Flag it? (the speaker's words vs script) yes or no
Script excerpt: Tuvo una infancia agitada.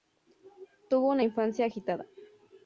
no